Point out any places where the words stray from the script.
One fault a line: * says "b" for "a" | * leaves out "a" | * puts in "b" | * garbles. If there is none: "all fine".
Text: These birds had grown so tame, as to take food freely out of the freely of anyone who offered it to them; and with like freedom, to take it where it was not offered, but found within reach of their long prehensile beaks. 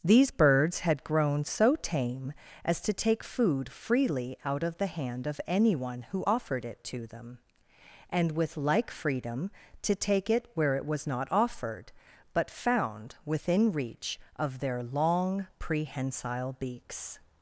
* says "hand" for "freely"